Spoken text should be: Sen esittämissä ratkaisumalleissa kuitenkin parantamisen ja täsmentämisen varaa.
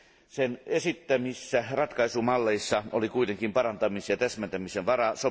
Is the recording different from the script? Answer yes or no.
yes